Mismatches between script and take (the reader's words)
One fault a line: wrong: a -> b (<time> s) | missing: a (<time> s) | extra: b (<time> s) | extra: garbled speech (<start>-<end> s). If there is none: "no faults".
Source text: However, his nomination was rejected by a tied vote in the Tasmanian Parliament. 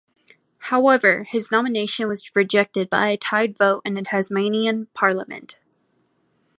no faults